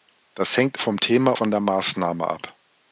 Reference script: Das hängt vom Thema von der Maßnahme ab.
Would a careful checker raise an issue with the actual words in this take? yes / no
no